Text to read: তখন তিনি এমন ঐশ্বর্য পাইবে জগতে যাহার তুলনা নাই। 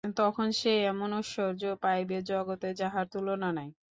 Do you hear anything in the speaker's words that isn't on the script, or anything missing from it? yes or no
yes